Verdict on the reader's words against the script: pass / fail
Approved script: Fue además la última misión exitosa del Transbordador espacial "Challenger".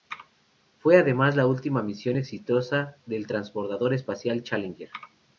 pass